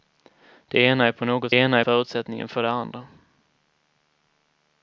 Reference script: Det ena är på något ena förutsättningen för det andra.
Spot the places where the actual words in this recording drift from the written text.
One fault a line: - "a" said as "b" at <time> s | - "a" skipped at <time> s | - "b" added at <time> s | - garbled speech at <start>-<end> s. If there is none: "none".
none